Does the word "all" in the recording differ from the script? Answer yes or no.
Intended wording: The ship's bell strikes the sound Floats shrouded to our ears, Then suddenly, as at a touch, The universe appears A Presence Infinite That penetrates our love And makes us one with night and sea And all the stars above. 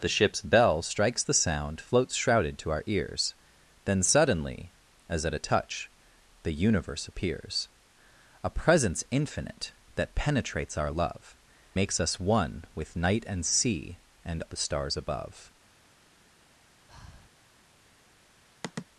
yes